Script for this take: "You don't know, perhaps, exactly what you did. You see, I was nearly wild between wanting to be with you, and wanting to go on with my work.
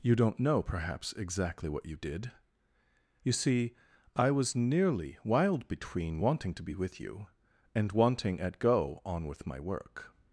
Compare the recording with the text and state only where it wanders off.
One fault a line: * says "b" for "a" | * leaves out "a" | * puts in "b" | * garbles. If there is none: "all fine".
* says "at" for "to"